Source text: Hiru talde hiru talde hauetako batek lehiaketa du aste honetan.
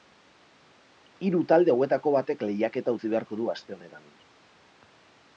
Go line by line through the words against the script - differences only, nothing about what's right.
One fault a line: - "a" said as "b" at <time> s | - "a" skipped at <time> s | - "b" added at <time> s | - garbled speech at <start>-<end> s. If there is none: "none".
- "hiru talde" skipped at 1.7 s
- "utzi beharko" added at 2.9 s